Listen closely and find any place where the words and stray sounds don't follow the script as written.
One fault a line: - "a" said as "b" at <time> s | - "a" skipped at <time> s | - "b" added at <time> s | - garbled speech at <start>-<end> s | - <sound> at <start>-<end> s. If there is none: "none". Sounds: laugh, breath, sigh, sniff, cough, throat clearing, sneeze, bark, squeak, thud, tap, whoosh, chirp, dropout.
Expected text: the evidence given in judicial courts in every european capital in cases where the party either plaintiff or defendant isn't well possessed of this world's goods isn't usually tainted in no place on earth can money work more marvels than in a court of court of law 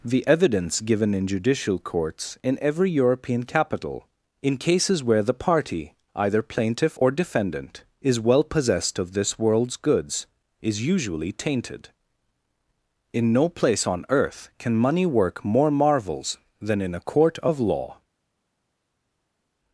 - "isn't" said as "is" at 8.0 s
- "isn't" said as "is" at 10.6 s
- "court of" skipped at 17.6 s